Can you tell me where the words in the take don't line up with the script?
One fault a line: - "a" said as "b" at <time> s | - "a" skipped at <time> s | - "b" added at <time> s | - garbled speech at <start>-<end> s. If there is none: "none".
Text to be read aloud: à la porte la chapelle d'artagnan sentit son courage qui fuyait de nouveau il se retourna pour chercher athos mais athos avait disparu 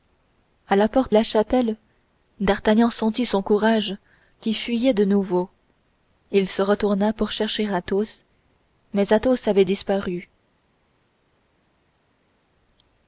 none